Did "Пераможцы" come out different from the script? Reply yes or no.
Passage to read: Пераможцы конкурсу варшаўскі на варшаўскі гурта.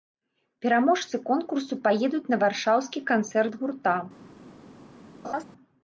no